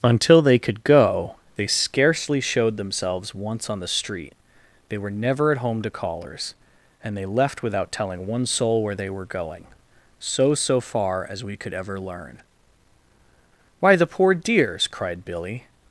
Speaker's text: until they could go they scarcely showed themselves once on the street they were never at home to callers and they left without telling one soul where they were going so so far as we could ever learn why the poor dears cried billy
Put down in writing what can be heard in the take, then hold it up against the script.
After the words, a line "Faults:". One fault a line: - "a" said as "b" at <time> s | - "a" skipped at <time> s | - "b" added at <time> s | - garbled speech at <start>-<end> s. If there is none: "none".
until they could go they scarcely showed themselves once on the street they were never at home to callers and they left without telling one soul where they were going so so far as we could ever learn why the poor dears cried billy
Faults:
none